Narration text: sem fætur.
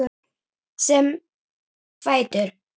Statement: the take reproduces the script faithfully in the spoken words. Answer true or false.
true